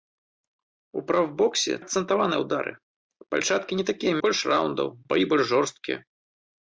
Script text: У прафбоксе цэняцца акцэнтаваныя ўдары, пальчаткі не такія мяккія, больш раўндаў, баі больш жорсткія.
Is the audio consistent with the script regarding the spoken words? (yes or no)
no